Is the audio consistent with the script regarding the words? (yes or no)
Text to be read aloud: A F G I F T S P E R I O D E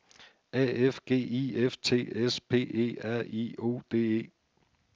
yes